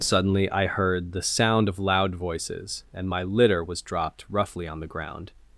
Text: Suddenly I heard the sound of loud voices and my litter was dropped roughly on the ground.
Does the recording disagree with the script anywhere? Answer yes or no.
no